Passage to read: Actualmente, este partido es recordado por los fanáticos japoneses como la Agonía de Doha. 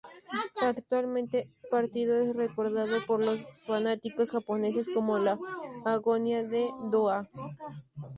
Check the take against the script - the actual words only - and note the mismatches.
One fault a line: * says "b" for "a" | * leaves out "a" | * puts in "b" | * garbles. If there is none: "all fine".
* leaves out "este"